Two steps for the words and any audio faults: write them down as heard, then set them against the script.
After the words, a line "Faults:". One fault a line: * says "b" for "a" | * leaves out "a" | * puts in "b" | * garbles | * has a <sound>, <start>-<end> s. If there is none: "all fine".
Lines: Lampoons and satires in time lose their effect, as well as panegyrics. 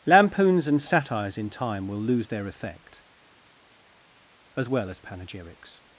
Lampoons and satires in time will lose their effect, as well as panegyrics.
Faults:
* puts in "will"